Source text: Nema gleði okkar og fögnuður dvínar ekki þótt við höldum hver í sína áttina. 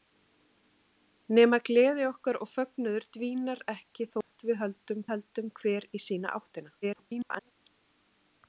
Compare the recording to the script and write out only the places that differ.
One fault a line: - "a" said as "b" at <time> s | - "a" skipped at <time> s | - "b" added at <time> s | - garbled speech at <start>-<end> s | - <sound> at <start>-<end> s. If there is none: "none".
- dropout at 4.2-4.3 s
- "höldum" added at 5.1 s
- garbled speech at 6.8-7.5 s